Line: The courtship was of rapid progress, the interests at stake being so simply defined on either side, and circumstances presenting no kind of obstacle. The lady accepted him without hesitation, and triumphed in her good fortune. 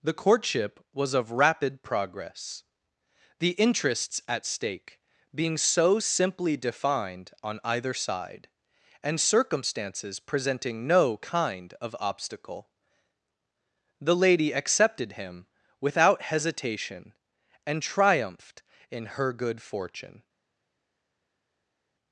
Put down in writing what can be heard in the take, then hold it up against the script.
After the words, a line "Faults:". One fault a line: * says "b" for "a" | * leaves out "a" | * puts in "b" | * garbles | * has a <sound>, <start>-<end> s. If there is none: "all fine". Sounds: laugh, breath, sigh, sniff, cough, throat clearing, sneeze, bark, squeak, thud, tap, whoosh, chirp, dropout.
The courtship was of rapid progress, the interests at stake being so simply defined on either side, and circumstances presenting no kind of obstacle. The lady accepted him without hesitation, and triumphed in her good fortune.
Faults:
all fine